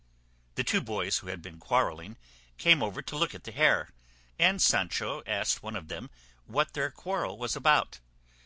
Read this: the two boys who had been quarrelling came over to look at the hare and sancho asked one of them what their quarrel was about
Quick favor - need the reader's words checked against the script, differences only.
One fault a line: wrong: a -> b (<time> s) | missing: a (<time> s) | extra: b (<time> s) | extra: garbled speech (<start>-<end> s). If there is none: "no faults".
no faults